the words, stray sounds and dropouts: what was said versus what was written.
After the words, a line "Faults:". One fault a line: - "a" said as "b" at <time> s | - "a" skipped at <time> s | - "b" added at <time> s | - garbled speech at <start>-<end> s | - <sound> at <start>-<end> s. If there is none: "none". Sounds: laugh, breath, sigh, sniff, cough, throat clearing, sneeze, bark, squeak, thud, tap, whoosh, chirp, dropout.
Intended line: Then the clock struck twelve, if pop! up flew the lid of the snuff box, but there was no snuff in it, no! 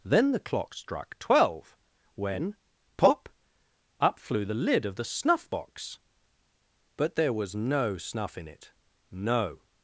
Then the clock struck twelve, when pop! up flew the lid of the snuff box, but there was no snuff in it, no!
Faults:
- "if" said as "when" at 2.1 s